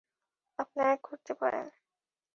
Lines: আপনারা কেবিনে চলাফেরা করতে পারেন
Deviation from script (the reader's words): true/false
true